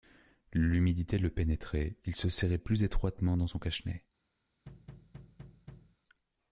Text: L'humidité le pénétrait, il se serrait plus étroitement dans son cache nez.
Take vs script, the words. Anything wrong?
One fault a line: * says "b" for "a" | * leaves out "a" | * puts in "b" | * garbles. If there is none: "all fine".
all fine